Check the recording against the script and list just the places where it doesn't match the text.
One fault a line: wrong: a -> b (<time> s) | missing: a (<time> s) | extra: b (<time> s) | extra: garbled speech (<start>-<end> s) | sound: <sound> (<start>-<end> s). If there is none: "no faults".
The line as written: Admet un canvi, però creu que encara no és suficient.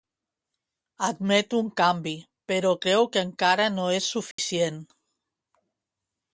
sound: dropout (4.3-4.4 s)